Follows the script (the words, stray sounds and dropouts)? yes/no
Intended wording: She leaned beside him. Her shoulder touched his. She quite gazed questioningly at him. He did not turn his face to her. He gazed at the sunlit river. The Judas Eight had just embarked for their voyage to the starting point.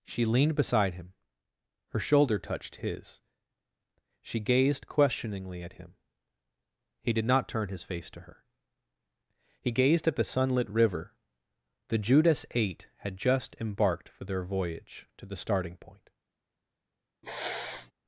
no